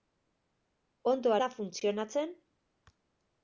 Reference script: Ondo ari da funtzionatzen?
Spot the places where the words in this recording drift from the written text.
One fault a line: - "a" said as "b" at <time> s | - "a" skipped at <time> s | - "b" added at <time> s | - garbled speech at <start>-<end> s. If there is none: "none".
- "ari" skipped at 1.4 s